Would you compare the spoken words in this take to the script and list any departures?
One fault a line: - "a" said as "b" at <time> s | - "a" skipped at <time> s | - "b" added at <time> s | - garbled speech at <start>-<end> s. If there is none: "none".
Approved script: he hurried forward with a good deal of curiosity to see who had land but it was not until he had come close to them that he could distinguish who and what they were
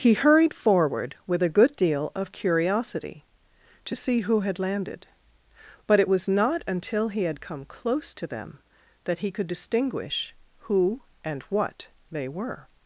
- "land" said as "landed" at 4.6 s